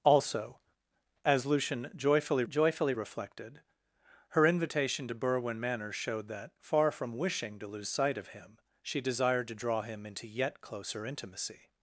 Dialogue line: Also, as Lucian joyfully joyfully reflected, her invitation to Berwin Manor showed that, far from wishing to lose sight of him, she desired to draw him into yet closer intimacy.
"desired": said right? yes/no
yes